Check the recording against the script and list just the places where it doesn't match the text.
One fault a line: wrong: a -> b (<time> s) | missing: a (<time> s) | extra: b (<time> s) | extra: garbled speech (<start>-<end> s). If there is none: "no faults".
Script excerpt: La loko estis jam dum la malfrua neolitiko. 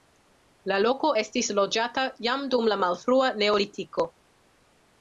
extra: loĝata (1.6 s)